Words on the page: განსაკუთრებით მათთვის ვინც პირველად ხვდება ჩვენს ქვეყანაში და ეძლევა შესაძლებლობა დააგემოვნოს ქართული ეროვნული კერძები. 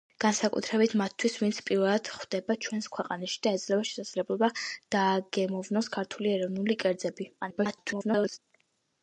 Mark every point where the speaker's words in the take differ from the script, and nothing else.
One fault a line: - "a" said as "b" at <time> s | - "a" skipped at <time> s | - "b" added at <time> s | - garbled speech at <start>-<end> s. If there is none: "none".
- garbled speech at 7.4-8.4 s